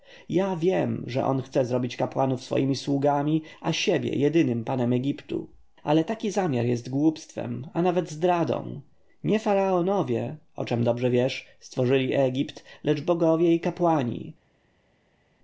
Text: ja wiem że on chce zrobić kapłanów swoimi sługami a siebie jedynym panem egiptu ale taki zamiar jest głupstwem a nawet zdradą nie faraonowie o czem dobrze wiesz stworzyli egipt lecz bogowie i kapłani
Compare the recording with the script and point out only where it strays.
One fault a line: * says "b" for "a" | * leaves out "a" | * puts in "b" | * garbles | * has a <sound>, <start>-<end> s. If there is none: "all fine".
all fine